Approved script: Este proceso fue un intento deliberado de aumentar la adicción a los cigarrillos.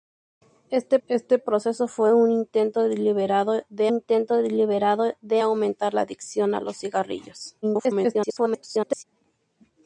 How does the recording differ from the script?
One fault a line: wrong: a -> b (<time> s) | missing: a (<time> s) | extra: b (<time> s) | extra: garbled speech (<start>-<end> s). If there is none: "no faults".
extra: este (1.1 s)
extra: intento deliberado de (3.9 s)
extra: garbled speech (7.6-9.0 s)